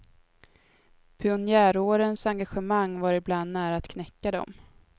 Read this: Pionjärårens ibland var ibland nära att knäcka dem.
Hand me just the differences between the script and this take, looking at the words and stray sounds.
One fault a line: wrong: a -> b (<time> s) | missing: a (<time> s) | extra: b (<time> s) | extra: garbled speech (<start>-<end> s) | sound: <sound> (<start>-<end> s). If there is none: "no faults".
wrong: ibland -> engagemang (2.2 s)